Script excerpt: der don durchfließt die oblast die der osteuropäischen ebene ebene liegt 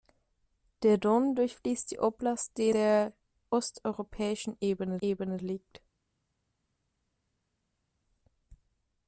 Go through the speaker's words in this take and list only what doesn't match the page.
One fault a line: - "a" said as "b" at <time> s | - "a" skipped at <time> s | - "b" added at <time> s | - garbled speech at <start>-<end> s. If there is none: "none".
none